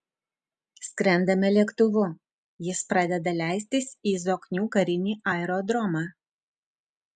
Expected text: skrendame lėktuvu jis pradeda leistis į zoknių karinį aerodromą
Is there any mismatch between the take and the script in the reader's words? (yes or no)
no